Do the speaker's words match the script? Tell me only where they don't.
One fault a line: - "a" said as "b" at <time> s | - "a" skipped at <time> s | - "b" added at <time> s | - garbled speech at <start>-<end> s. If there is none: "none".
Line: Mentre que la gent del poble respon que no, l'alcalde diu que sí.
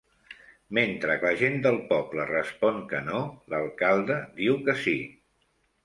- "que" skipped at 1.2 s